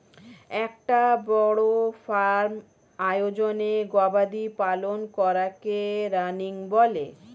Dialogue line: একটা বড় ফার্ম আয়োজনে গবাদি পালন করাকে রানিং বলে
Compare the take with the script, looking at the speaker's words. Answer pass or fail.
pass